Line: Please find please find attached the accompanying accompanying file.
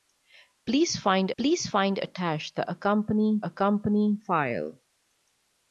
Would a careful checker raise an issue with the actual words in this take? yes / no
no